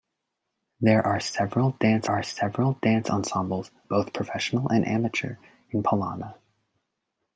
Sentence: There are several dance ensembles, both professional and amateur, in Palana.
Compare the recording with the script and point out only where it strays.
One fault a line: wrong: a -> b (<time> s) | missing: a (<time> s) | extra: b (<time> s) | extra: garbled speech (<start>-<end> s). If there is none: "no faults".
extra: are several dance (2.1 s)